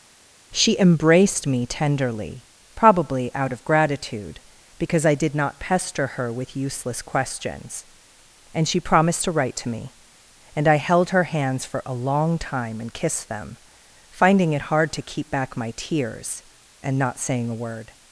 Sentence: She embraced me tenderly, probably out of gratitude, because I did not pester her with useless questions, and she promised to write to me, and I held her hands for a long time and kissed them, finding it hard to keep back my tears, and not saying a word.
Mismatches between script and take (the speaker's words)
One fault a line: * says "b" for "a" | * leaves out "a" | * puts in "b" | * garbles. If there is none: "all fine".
all fine